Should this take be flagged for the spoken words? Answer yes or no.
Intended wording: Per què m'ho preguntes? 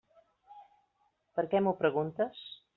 no